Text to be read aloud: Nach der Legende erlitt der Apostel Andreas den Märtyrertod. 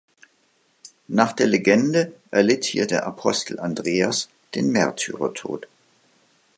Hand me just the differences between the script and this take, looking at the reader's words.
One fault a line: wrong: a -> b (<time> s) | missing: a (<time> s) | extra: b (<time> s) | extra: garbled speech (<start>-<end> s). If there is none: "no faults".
extra: hier (2.6 s)